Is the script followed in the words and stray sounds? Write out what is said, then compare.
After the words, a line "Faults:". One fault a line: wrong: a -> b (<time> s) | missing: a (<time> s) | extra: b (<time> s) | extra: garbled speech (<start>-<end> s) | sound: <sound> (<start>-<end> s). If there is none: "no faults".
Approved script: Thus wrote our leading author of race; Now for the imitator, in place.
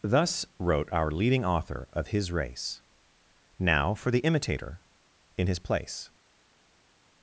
Thus wrote our leading author of his race; Now for the imitator, in his place.
Faults:
extra: his (2.1 s)
extra: his (5.5 s)